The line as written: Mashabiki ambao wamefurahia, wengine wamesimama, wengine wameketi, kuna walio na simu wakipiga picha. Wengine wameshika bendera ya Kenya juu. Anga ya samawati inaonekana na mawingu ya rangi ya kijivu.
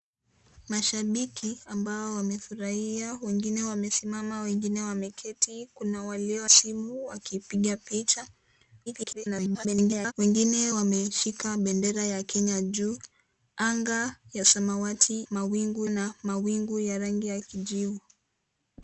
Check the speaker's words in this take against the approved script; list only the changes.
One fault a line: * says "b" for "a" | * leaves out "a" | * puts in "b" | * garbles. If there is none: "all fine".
* leaves out "na"
* garbles
* says "mawingu" for "inaonekana"